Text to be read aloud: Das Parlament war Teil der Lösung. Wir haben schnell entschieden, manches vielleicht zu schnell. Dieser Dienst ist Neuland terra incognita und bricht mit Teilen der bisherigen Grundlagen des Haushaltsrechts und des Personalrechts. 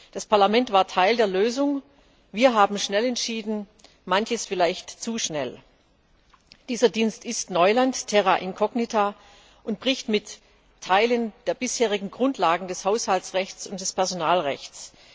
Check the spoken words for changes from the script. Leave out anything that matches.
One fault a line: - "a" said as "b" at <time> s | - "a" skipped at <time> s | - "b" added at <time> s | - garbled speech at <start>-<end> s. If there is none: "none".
none